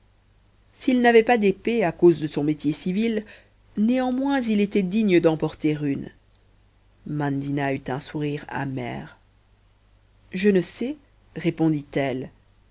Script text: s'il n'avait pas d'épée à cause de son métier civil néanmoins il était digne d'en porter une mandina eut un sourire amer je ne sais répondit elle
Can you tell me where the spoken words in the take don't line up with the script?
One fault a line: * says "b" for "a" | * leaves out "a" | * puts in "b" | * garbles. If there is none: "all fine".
all fine